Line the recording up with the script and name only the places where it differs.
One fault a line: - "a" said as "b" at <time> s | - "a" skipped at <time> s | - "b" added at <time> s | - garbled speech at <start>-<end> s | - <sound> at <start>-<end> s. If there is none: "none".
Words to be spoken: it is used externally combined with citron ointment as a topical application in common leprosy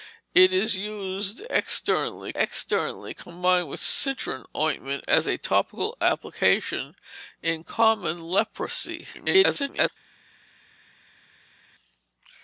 - "externally" added at 2.4 s
- garbled speech at 9.1-9.9 s